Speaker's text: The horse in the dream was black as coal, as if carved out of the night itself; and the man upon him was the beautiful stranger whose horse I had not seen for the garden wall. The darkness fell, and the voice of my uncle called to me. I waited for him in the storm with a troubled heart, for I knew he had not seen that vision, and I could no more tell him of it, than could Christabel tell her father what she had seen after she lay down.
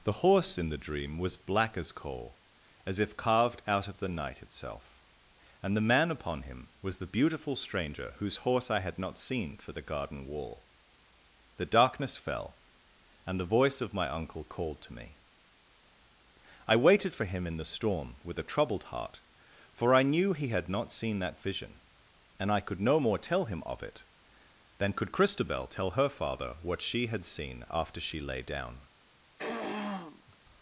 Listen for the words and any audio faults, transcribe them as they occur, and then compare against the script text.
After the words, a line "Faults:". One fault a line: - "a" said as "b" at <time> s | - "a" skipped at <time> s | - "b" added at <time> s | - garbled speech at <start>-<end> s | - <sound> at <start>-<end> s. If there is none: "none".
The horse in the dream was black as coal, as if carved out of the night itself; and the man upon him was the beautiful stranger whose horse I had not seen for the garden wall. The darkness fell, and the voice of my uncle called to me. I waited for him in the storm with a troubled heart, for I knew he had not seen that vision, and I could no more tell him of it, than could Christabel tell her father what she had seen after she lay down.
Faults:
- throat clearing at 29.4-30.4 s